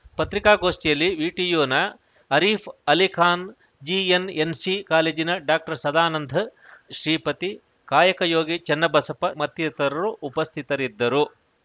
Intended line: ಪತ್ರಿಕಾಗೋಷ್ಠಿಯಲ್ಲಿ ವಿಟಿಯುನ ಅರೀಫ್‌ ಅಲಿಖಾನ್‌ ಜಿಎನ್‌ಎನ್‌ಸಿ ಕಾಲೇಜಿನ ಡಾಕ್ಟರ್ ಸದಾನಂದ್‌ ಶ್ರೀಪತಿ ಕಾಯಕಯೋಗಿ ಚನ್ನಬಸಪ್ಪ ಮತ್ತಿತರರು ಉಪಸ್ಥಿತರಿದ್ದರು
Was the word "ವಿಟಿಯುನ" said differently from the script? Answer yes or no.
no